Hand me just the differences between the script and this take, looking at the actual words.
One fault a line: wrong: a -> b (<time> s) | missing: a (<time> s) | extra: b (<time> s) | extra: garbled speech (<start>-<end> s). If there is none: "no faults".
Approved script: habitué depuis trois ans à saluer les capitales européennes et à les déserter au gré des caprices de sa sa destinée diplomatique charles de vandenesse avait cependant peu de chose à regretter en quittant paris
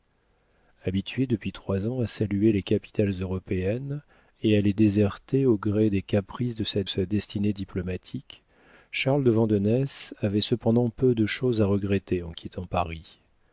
no faults